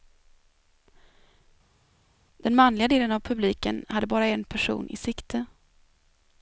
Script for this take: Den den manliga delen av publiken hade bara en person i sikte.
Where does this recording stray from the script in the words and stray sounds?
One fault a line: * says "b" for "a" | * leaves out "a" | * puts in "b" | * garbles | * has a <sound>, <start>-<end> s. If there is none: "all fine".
* leaves out "den"